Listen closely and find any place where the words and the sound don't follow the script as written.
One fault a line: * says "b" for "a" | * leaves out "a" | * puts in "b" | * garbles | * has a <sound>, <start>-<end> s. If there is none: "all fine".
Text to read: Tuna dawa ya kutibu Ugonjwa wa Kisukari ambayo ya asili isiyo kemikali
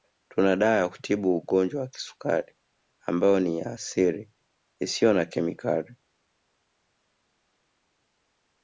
* puts in "ni"
* puts in "na"